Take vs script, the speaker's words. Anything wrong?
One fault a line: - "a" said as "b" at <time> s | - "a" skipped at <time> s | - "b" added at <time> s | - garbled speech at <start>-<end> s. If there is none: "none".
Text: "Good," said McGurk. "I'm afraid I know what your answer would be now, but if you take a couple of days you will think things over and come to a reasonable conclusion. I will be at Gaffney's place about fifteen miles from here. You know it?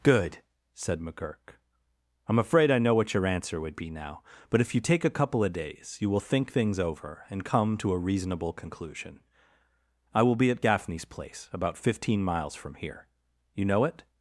none